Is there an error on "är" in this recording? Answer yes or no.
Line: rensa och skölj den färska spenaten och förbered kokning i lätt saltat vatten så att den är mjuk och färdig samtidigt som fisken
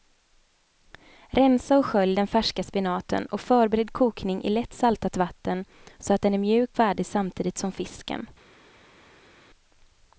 no